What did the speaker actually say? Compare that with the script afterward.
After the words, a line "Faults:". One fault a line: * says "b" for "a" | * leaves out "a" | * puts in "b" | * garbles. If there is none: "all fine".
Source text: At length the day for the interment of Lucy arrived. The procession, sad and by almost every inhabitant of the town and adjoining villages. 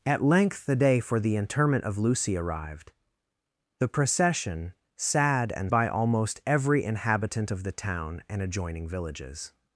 At length the day for the interment of Lucy arrived. The procession, sad and by almost every inhabitant of the town and adjoining villages.
Faults:
all fine